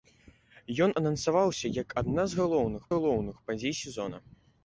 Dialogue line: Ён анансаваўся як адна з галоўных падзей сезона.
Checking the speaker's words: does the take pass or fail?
fail